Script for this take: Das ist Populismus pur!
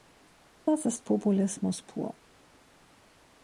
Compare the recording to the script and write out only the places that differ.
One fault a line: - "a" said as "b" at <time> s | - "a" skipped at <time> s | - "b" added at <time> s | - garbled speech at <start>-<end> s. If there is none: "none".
none